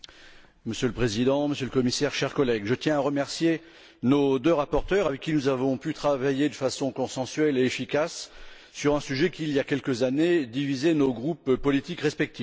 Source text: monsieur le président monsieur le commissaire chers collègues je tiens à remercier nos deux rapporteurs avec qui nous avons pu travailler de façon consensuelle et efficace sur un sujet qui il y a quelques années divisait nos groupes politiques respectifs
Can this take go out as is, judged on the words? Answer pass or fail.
pass